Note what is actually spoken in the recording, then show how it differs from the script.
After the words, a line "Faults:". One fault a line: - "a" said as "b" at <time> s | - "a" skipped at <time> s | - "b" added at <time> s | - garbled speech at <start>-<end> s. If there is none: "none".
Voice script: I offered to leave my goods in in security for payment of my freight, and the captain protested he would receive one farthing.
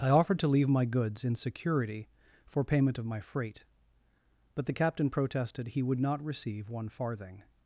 I offered to leave my goods in security for payment of my freight, but the captain protested he would not receive one farthing.
Faults:
- "in" skipped at 1.4 s
- "and" said as "but" at 4.5 s
- "not" added at 6.0 s